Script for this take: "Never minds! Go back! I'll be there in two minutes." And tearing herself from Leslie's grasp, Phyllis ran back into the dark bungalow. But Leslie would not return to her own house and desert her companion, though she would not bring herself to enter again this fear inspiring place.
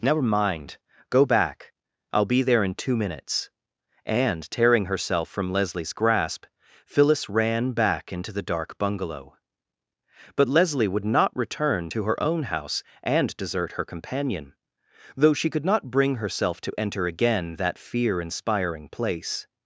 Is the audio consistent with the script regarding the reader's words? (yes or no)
no